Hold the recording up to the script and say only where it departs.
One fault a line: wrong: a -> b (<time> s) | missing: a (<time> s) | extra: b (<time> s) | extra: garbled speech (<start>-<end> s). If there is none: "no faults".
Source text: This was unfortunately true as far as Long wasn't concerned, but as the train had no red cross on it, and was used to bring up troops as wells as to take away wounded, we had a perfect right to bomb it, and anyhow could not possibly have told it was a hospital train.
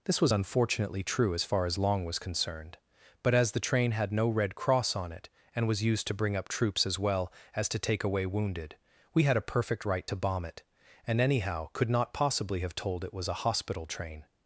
wrong: wasn't -> was (2.0 s)
wrong: wells -> well (7.0 s)